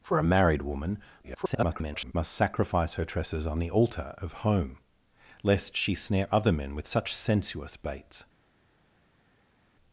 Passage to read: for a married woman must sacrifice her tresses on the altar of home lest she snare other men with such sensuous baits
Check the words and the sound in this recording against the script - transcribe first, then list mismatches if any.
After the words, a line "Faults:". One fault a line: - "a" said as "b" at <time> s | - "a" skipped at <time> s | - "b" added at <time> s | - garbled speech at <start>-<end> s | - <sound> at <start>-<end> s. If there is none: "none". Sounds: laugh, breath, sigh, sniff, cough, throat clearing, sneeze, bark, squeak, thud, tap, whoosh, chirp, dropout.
for a married woman [garbled] must sacrifice her tresses on the altar of home lest she snare other men with such sensuous baits
Faults:
- garbled speech at 1.2-2.1 s